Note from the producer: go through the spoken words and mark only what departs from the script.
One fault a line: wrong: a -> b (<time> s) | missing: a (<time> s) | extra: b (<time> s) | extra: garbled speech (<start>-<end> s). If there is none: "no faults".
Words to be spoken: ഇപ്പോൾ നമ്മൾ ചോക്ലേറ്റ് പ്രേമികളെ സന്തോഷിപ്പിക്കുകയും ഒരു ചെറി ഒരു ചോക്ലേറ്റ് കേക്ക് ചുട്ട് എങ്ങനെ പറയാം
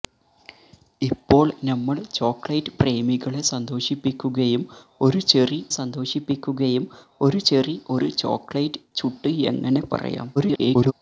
extra: സന്തോഷിപ്പിക്കുകയും (5.8 s)
extra: ചെറി ഒരു (7.4 s)
missing: കേക്ക് (8.8 s)
extra: garbled speech (10.4-10.9 s)